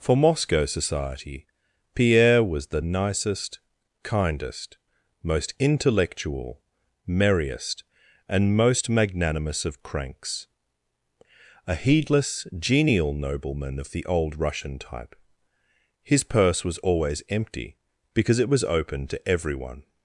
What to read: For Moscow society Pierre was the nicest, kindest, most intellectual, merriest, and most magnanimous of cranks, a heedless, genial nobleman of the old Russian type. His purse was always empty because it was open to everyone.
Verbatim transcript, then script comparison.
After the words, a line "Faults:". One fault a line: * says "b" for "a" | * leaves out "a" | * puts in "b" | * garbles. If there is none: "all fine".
For Moscow society Pierre was the nicest, kindest, most intellectual, merriest, and most magnanimous of cranks, a heedless, genial nobleman of the old Russian type. His purse was always empty because it was open to everyone.
Faults:
all fine